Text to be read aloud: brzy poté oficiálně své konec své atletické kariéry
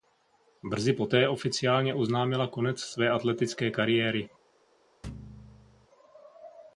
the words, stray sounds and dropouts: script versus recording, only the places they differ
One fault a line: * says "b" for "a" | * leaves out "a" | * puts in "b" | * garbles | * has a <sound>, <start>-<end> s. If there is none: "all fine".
* says "oznámila" for "své"
* has a thud, 5.0-5.9 s